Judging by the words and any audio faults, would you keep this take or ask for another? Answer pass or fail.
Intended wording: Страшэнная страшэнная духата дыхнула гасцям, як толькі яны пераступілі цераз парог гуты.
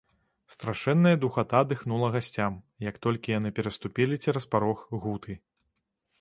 fail